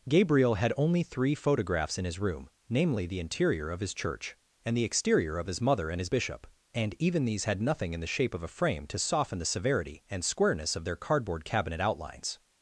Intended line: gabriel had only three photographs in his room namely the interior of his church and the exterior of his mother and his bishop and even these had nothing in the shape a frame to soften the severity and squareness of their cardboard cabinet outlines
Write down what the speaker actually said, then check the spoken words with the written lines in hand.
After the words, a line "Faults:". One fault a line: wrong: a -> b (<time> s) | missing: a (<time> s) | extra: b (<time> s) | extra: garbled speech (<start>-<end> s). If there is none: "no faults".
gabriel had only three photographs in his room namely the interior of his church and the exterior of his mother and his bishop and even these had nothing in the shape of a frame to soften the severity and squareness of their cardboard cabinet outlines
Faults:
extra: of (8.3 s)